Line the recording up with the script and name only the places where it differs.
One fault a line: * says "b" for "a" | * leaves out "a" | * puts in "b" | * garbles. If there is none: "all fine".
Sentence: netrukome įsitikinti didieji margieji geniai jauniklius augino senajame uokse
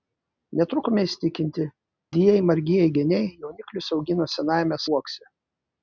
all fine